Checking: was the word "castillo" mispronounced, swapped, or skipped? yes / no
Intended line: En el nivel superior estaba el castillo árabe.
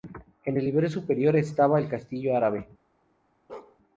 no